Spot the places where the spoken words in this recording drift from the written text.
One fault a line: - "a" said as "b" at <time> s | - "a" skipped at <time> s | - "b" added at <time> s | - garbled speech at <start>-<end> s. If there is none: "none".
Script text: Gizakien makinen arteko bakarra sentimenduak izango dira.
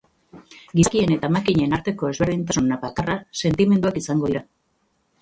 - "eta" added at 1.1 s
- "ezberdintasun" added at 2.1 s